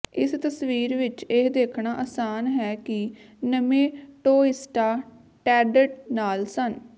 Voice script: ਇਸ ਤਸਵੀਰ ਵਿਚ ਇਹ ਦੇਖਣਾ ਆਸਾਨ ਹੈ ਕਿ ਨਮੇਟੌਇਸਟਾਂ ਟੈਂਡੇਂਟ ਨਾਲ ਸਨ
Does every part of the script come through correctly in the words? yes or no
yes